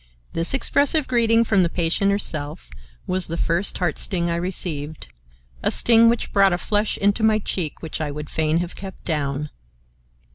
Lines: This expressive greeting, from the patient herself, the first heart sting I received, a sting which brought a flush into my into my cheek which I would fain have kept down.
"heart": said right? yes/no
yes